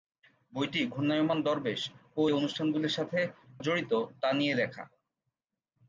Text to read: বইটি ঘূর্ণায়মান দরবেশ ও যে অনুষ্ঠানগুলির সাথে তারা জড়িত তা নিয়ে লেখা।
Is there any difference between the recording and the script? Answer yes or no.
yes